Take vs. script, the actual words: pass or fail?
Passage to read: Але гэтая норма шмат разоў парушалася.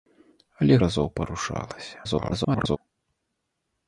fail